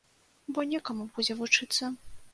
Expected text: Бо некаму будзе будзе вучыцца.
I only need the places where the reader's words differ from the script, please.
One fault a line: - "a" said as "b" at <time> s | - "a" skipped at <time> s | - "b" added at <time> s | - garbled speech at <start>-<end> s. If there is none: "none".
- "будзе" skipped at 1.4 s